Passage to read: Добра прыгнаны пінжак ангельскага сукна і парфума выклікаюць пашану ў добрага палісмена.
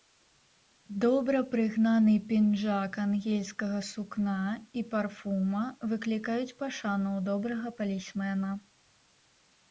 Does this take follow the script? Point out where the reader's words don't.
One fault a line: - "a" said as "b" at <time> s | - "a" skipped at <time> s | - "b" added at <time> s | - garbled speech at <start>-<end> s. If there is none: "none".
none